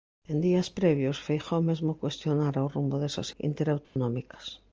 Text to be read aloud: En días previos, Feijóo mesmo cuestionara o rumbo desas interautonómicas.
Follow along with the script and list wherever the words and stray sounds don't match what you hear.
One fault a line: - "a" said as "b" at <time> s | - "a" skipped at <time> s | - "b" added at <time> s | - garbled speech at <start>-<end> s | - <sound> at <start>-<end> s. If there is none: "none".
- dropout at 3.8-4.0 s